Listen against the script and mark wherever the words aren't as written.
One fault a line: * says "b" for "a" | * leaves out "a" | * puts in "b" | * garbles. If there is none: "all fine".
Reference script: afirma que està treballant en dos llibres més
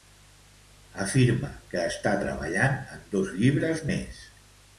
all fine